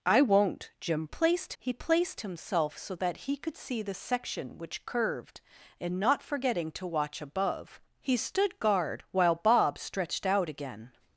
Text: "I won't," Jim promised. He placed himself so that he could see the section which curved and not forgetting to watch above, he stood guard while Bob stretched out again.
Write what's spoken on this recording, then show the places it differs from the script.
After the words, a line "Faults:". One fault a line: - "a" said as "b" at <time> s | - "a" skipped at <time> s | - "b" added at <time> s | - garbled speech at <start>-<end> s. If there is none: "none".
"I won't," Jim placed. He placed himself so that he could see the section which curved and not forgetting to watch above, he stood guard while Bob stretched out again.
Faults:
- "promised" said as "placed" at 1.1 s